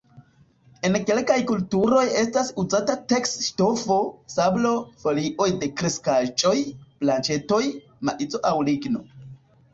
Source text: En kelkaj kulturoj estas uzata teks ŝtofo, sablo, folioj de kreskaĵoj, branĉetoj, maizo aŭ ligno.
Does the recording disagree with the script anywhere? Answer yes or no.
no